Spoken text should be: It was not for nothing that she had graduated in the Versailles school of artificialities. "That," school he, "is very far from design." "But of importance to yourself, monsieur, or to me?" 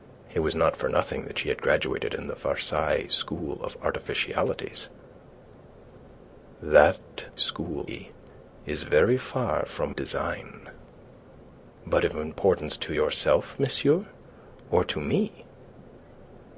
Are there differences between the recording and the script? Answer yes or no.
no